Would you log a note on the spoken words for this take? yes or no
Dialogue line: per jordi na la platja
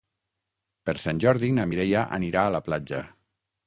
yes